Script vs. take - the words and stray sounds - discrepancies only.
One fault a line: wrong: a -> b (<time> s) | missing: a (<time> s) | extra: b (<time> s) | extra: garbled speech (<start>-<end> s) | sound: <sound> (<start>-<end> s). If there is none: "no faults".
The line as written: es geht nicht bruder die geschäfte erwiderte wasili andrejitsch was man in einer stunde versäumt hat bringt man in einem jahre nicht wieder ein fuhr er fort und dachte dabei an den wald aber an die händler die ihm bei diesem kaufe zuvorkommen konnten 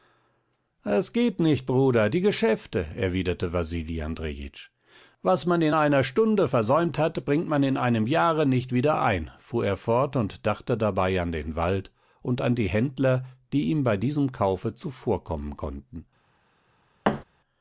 wrong: aber -> und (12.2 s)
sound: thud (17.0-17.2 s)